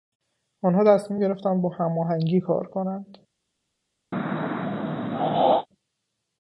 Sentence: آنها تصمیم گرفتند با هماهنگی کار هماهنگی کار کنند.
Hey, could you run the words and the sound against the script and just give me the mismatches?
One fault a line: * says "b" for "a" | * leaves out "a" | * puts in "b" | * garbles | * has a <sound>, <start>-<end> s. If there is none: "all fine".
* leaves out "هماهنگی کار"
* has a throat clearing, 4.1-5.7 s